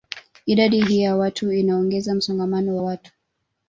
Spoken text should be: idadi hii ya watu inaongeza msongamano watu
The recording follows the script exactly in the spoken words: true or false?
true